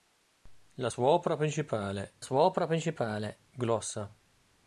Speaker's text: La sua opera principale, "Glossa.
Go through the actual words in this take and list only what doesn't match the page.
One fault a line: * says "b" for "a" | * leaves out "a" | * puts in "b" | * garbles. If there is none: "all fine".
* puts in "sua opera principale"